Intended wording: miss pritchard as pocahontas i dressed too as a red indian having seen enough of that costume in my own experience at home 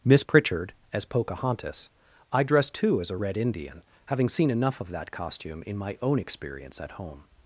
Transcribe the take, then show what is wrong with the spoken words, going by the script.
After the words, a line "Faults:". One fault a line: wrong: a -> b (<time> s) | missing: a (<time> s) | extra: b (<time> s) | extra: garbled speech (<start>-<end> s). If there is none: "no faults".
miss pritchard as pocahontas i dressed too as a red indian having seen enough of that costume in my own experience at home
Faults:
no faults